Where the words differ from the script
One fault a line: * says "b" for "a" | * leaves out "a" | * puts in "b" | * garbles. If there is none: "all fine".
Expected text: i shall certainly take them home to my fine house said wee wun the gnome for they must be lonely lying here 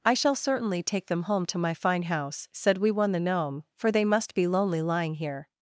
all fine